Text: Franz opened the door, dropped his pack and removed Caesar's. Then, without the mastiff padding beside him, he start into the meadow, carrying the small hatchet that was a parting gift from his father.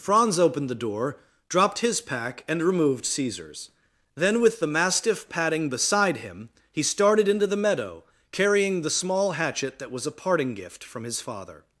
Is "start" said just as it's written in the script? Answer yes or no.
no